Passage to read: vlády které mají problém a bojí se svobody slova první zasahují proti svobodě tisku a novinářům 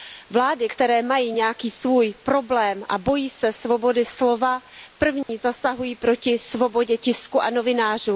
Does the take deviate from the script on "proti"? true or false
false